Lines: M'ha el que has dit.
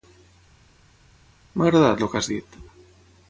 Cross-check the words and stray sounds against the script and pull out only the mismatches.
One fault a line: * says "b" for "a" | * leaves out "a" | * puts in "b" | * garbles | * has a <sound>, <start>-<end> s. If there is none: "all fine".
* puts in "agradat"